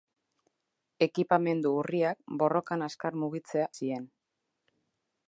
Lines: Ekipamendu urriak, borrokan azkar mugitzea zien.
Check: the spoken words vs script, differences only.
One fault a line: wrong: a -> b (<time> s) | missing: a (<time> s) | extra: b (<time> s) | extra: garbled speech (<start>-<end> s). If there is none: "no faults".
no faults